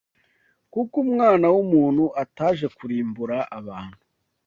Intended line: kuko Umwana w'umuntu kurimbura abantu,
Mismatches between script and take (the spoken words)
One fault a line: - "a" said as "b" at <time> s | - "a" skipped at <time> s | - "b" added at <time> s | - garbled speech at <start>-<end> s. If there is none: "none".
- "ataje" added at 2.2 s